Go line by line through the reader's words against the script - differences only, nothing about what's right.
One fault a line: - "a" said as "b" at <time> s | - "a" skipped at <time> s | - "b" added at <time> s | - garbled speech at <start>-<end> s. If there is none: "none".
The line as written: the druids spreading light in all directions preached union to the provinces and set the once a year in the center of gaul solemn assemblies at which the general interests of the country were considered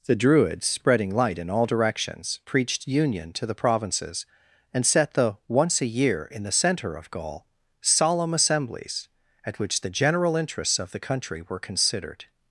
none